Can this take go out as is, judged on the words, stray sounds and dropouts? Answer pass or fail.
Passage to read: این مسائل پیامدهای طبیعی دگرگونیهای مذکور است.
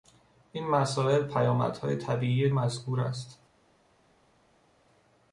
fail